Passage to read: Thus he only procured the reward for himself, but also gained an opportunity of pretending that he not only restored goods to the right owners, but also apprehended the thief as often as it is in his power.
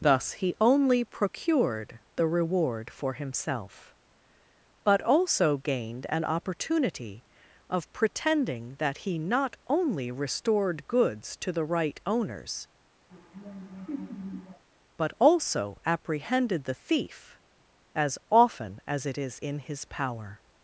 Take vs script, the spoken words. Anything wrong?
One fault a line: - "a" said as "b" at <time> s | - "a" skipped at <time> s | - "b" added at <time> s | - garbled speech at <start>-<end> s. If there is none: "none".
none